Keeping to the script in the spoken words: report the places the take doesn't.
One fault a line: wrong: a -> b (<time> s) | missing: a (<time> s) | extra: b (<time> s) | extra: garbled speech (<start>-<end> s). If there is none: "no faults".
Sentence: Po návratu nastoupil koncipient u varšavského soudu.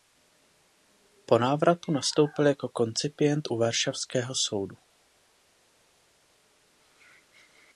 extra: jako (2.5 s)